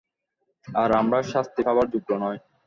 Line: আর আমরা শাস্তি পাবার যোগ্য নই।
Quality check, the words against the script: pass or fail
pass